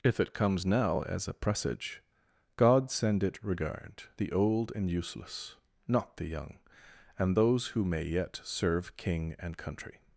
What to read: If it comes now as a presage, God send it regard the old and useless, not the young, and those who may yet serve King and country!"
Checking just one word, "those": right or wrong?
right